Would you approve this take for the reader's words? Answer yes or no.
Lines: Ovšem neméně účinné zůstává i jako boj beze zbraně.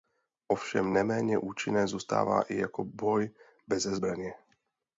yes